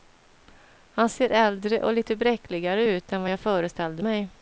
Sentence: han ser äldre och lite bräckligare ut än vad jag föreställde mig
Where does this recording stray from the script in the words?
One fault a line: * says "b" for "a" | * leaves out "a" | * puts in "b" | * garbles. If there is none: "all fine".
all fine